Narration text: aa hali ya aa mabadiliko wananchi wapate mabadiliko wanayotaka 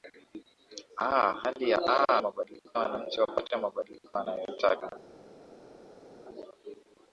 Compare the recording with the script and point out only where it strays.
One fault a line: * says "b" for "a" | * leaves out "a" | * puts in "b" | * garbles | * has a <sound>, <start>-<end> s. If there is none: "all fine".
all fine